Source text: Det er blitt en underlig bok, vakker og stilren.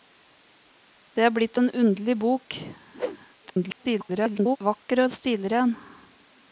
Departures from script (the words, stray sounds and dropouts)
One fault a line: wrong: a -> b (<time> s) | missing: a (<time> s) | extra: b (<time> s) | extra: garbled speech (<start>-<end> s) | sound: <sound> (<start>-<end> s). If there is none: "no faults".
sound: whoosh (2.9-3.2 s)
extra: garbled speech (3.4-4.6 s)